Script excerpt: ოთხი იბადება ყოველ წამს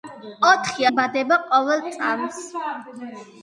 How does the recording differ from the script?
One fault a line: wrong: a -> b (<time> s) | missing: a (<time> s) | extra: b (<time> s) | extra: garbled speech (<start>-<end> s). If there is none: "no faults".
no faults